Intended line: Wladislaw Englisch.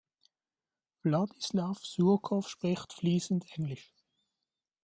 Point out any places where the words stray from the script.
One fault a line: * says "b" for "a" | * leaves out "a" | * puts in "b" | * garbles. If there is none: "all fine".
* puts in "Surkow spricht fließend"